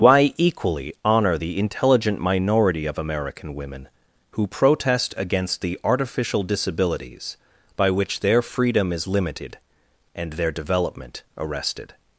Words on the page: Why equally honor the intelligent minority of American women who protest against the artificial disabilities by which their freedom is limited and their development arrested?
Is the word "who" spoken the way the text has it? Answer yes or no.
yes